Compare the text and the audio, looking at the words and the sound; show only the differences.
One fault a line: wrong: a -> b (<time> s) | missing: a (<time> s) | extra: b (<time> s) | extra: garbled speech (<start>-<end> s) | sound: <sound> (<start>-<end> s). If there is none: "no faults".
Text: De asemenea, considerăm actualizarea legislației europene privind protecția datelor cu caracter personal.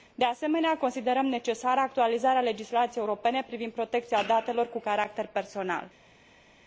extra: necesară (1.2 s)